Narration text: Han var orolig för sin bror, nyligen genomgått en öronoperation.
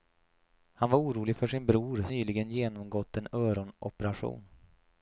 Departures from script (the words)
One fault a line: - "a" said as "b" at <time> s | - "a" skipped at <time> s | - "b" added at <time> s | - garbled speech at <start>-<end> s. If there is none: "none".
none